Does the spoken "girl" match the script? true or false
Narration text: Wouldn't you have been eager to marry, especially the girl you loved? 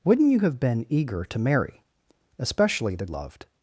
false